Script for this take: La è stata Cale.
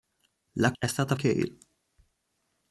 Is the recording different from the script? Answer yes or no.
no